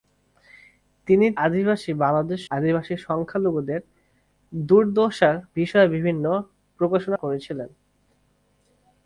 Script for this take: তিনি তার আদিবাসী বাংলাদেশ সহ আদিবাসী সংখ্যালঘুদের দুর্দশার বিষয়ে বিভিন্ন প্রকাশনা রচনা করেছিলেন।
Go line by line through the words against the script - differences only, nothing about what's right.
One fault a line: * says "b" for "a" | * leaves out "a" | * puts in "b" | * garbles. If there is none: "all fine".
* leaves out "তার"
* leaves out "সহ"
* leaves out "রচনা"